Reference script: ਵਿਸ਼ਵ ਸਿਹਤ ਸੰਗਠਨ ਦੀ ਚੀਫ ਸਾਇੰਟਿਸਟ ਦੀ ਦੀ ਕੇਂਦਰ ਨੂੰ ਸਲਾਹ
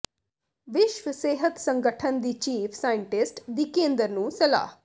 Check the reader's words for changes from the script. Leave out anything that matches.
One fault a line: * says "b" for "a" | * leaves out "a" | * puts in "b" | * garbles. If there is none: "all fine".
* leaves out "ਦੀ"